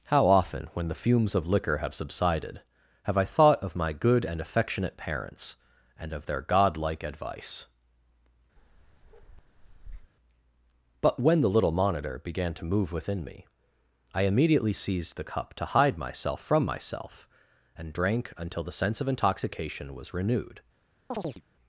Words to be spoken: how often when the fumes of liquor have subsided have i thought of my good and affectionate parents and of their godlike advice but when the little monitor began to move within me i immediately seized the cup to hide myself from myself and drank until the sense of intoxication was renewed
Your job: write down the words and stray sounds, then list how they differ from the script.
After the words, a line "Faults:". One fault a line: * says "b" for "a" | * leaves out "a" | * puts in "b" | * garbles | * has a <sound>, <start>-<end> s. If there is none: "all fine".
how often when the fumes of liquor have subsided have i thought of my good and affectionate parents and of their godlike advice but when the little monitor began to move within me i immediately seized the cup to hide myself from myself and drank until the sense of intoxication was renewed
Faults:
* has a bark, 8.6-10.1 s
* has a chirp, 21.1-21.4 s